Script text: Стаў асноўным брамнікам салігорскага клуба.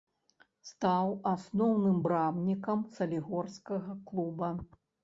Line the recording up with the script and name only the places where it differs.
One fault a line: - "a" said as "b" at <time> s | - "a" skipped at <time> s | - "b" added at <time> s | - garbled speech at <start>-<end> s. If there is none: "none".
none